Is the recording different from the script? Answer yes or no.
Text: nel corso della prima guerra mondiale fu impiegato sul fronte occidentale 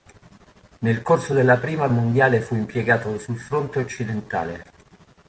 yes